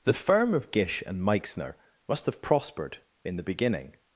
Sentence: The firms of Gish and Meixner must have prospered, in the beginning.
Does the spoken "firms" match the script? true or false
false